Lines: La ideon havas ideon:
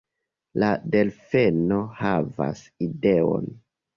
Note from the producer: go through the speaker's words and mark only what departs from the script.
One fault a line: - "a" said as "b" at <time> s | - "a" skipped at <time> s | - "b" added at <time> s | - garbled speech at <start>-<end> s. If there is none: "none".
- "ideon" said as "delfeno" at 0.9 s